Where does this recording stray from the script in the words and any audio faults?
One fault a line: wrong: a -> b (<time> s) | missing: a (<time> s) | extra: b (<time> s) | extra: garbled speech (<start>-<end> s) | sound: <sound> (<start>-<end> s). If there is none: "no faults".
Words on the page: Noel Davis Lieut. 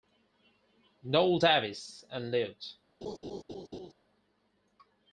extra: and (2.1 s)
sound: laugh (3.0-3.9 s)